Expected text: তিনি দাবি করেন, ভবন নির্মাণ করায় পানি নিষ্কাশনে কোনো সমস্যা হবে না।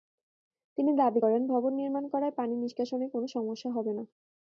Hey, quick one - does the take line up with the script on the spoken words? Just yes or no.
yes